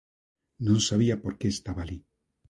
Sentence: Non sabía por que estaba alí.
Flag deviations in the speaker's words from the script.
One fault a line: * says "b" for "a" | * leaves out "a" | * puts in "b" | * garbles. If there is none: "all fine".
all fine